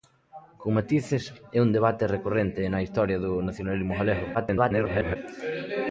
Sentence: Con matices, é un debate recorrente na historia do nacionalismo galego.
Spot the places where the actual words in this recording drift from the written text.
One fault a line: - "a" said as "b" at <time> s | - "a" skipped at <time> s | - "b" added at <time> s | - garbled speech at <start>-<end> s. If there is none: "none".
- garbled speech at 4.3-5.2 s